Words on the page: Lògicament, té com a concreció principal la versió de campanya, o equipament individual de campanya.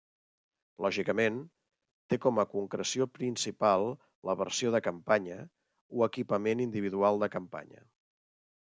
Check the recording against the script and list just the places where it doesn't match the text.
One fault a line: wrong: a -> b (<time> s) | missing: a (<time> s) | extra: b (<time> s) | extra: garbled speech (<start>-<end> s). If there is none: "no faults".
no faults